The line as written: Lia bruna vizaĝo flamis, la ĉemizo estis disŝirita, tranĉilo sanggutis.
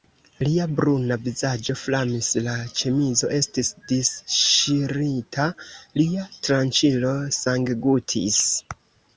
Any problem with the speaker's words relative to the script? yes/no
yes